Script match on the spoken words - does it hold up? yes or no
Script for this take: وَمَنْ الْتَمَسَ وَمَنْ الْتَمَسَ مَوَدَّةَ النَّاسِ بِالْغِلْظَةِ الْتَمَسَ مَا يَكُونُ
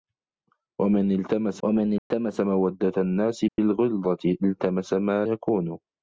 yes